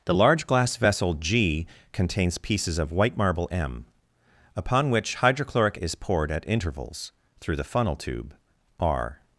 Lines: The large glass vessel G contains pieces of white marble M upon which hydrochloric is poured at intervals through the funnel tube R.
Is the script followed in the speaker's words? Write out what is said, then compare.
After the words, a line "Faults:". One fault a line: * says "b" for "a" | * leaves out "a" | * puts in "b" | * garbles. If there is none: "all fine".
The large glass vessel G contains pieces of white marble M upon which hydrochloric is poured at intervals through the funnel tube R.
Faults:
all fine